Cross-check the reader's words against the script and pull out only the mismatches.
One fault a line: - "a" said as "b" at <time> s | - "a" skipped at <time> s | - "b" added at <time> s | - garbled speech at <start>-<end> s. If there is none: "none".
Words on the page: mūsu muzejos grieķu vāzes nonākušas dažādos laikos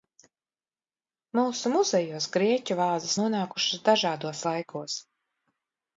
none